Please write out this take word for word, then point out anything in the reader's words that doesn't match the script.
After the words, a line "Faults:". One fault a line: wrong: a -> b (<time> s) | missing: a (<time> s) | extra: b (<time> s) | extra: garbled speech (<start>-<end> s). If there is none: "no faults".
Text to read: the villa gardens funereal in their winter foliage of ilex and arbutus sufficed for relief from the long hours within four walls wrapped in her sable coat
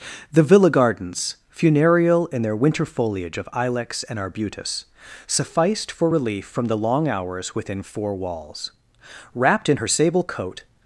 the villa gardens funereal in their winter foliage of ilex and arbutus sufficed for relief from the long hours within four walls wrapped in her sable coat
Faults:
no faults